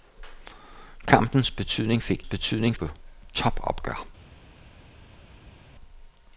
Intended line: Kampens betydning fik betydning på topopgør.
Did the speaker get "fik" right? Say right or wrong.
right